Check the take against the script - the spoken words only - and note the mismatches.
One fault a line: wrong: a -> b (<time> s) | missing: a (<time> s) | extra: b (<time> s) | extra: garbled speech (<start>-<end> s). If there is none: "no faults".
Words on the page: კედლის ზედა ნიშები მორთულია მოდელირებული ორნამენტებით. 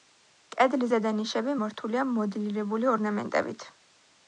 no faults